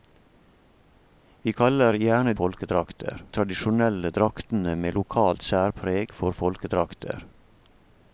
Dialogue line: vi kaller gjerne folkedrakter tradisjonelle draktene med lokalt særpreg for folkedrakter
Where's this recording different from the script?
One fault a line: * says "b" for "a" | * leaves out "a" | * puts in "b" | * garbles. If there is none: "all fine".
all fine